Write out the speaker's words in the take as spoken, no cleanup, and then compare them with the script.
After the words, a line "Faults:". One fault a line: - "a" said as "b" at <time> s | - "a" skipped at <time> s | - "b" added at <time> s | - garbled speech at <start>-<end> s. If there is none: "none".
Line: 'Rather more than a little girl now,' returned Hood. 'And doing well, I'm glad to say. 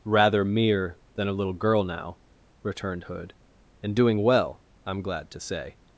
'Rather mere than a little girl now,' returned Hood. 'And doing well, I'm glad to say.
Faults:
- "more" said as "mere" at 0.4 s